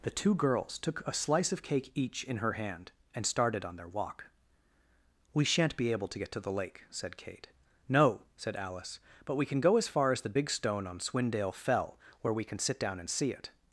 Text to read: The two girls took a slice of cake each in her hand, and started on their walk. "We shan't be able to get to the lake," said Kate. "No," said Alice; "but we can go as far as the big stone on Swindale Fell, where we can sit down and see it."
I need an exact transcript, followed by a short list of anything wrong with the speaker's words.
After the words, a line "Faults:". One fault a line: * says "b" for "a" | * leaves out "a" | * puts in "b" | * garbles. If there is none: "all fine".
The two girls took a slice of cake each in her hand, and started on their walk. "We shan't be able to get to the lake," said Kate. "No," said Alice; "but we can go as far as the big stone on Swindale Fell, where we can sit down and see it."
Faults:
all fine